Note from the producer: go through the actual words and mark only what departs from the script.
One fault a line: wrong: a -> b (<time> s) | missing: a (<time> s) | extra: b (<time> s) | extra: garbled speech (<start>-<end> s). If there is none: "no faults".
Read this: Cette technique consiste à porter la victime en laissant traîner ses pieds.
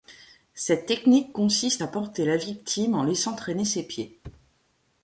no faults